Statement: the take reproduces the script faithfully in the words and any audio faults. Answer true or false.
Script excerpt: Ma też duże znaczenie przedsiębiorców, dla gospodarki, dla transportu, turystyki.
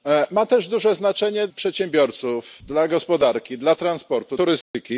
false